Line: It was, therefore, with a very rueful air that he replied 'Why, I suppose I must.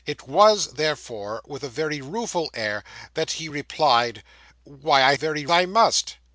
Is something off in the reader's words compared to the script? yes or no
yes